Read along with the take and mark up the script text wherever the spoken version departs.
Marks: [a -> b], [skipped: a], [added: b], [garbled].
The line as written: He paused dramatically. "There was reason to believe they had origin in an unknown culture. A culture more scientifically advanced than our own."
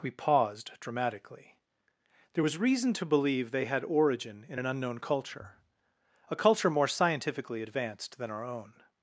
[He -> We] paused dramatically. "There was reason to believe they had origin in an unknown culture. A culture more scientifically advanced than our own."